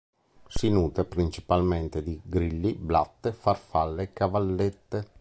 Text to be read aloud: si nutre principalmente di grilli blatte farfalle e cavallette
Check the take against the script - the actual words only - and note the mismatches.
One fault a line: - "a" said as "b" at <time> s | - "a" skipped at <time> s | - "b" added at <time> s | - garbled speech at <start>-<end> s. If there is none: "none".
none